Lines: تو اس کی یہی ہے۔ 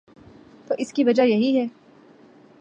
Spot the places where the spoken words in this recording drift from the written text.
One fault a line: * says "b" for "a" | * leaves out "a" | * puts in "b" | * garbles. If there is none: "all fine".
* puts in "وجہ"